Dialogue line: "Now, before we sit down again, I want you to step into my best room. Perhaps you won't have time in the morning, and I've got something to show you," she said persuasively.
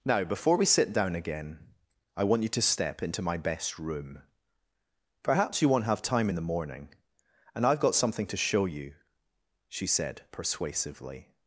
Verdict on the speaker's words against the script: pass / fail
pass